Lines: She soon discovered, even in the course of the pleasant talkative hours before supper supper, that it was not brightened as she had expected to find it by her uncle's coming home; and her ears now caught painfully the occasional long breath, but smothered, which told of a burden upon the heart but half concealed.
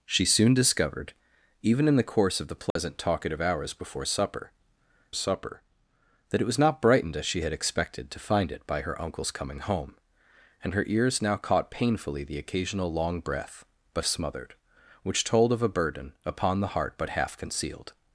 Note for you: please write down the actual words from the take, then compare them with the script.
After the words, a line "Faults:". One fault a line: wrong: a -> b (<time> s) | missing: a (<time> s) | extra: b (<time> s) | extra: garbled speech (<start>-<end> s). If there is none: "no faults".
She soon discovered, even in the course of the pleasant talkative hours before supper supper, that it was not brightened as she had expected to find it by her uncle's coming home; and her ears now caught painfully the occasional long breath, but smothered, which told of a burden upon the heart but half concealed.
Faults:
no faults